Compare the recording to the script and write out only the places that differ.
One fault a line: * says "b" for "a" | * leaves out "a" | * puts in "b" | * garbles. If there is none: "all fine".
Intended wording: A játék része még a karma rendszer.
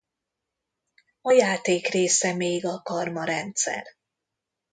all fine